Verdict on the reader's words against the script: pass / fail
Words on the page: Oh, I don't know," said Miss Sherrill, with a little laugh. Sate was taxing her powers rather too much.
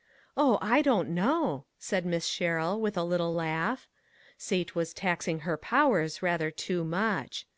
pass